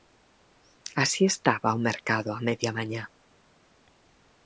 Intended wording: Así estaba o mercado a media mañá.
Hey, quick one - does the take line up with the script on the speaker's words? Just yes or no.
yes